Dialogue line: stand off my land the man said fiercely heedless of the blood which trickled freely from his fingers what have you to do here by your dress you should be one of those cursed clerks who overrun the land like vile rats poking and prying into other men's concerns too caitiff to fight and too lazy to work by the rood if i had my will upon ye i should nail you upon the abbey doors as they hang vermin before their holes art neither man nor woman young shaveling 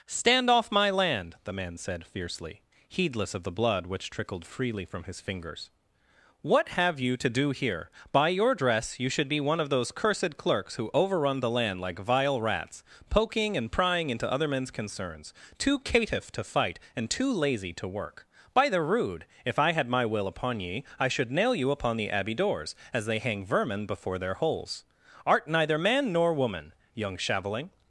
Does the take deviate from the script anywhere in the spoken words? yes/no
no